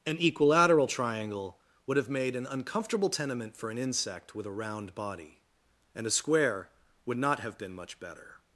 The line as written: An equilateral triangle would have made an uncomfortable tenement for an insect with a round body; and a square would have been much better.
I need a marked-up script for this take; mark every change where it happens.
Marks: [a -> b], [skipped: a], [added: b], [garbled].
An equilateral triangle would have made an uncomfortable tenement for an insect with a round body; and a square would [added: not] have been much better.